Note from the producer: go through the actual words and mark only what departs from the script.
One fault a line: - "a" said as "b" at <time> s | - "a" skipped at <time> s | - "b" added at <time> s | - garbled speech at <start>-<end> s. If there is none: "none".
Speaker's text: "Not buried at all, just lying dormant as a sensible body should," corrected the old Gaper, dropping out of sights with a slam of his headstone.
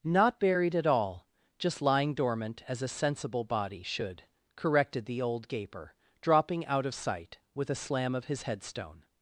- "sights" said as "sight" at 6.9 s